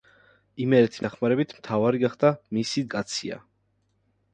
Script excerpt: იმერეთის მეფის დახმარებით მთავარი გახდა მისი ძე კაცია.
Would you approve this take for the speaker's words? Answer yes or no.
no